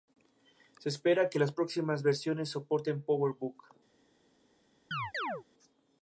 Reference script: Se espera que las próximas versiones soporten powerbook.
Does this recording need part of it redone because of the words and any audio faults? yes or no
yes